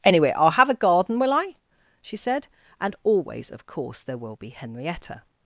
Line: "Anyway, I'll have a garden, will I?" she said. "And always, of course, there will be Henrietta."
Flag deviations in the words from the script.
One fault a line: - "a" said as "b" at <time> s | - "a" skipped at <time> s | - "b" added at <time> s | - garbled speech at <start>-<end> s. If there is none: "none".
none